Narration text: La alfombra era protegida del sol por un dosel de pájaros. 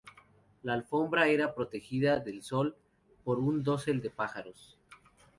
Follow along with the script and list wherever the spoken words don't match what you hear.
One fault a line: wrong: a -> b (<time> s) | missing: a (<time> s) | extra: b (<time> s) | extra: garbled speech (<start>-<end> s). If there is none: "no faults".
no faults